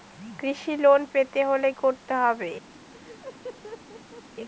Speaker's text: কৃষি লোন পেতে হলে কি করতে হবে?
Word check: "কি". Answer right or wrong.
wrong